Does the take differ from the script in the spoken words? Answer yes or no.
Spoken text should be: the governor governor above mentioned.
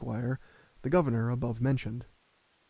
yes